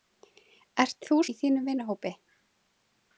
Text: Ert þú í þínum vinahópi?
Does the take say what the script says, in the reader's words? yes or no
yes